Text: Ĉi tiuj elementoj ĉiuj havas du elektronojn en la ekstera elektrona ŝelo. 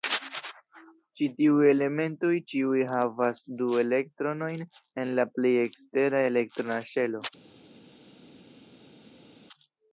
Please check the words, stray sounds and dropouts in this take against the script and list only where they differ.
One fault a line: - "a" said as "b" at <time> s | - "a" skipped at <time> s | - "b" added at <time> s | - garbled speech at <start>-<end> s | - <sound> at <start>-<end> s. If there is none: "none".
- "plej" added at 5.4 s